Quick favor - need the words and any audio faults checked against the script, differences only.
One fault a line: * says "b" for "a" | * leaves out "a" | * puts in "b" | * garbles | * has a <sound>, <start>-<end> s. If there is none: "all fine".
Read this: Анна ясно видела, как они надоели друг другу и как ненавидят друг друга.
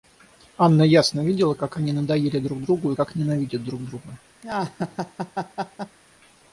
* has a laugh, 4.4-6.0 s